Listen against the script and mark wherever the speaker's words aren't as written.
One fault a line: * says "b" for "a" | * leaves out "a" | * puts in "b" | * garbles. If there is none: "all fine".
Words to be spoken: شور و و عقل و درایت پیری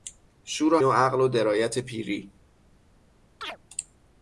all fine